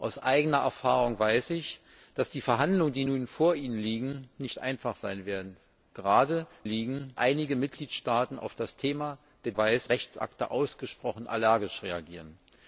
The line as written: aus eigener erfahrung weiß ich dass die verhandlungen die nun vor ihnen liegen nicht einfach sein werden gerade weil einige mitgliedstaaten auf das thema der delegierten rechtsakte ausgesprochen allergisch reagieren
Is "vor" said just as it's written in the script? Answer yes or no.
yes